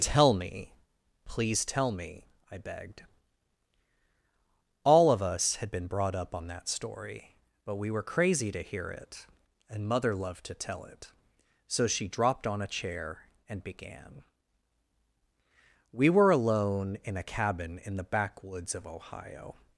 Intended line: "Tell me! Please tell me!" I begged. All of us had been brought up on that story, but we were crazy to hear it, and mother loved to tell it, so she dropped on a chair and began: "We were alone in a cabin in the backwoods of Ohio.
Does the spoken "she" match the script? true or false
true